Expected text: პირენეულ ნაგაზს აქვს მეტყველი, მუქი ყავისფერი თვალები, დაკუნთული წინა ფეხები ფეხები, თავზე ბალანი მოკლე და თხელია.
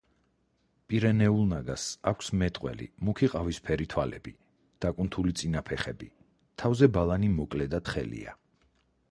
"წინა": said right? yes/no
yes